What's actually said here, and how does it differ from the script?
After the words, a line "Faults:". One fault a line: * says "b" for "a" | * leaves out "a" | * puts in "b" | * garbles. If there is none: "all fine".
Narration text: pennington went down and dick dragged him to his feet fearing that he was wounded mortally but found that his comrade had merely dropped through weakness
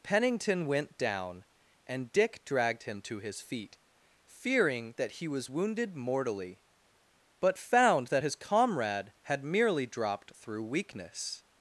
pennington went down and dick dragged him to his feet fearing that he was wounded mortally but found that his comrade had merely dropped through weakness
Faults:
all fine